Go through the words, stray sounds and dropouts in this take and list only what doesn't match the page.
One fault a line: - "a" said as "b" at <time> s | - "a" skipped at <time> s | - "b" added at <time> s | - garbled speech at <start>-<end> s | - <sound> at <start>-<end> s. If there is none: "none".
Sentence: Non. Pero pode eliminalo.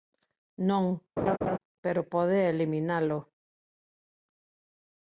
- laugh at 1.2-1.6 s